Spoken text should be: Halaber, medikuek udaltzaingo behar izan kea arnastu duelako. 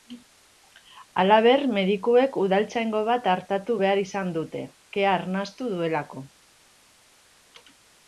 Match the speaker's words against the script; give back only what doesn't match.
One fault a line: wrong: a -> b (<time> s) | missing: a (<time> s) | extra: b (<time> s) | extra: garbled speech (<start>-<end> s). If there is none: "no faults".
extra: bat artatu (3.1 s)
extra: dute (4.4 s)